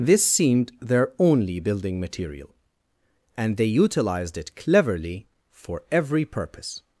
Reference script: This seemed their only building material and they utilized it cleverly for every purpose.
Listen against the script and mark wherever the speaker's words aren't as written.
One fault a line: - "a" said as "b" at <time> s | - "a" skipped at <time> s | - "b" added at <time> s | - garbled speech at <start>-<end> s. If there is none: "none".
none